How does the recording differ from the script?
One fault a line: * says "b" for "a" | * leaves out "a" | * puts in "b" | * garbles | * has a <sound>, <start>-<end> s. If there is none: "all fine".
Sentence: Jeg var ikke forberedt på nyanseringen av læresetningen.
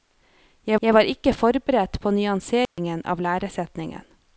* puts in "jeg"
* has a dropout, 2.7-2.8 s